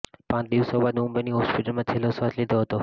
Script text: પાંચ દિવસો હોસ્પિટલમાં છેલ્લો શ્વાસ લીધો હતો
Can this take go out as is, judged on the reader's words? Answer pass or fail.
fail